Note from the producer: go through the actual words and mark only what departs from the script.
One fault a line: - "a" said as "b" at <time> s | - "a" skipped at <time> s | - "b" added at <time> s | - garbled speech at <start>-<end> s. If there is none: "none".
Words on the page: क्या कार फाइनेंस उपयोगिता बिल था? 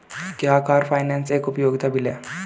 - "एक" added at 1.3 s
- "था" said as "है" at 2.1 s